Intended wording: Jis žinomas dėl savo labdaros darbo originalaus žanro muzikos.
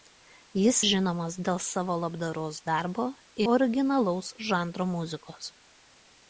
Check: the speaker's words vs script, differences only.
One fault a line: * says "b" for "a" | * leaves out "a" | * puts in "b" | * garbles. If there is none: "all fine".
all fine